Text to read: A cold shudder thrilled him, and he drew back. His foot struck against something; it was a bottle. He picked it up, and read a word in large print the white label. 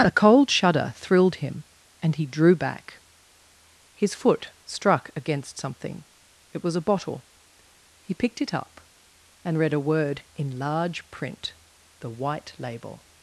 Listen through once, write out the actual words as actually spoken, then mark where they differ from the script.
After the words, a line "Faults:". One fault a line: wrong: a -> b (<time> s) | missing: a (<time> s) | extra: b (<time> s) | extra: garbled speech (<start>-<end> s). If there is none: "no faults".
A cold shudder thrilled him, and he drew back. His foot struck against something; it was a bottle. He picked it up, and read a word in large print the white label.
Faults:
no faults